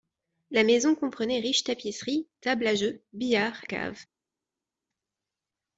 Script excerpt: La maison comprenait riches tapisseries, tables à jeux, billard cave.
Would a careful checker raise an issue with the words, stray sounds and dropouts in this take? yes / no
no